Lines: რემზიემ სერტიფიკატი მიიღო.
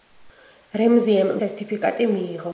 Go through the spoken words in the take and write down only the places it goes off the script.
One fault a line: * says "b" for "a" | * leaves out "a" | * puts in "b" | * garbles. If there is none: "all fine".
all fine